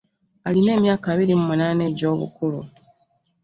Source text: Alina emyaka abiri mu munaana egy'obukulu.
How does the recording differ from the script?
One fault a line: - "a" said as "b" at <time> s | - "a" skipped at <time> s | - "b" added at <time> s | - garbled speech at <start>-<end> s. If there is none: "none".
none